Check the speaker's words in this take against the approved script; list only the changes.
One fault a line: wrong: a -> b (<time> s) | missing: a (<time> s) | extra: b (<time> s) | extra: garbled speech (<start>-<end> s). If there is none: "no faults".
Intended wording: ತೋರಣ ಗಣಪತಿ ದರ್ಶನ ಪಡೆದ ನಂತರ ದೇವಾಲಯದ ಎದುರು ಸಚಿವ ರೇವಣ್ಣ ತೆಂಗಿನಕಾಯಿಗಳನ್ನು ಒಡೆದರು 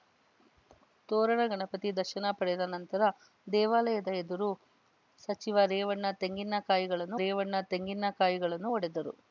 extra: ರೇವಣ್ಣ ತೆಂಗಿನಕಾಯಿಗಳನ್ನು (7.1 s)